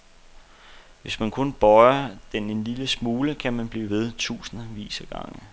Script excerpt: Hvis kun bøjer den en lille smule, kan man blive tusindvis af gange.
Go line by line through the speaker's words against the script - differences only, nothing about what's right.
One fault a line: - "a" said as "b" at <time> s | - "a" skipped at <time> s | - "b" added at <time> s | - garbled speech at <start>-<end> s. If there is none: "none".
- "man" added at 1.2 s
- "ved" added at 3.9 s